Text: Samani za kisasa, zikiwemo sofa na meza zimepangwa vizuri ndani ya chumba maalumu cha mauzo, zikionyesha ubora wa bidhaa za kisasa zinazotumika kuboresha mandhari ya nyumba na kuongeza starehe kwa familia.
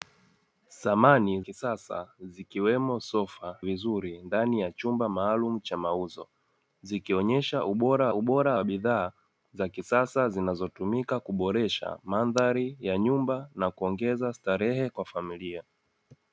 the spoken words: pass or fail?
fail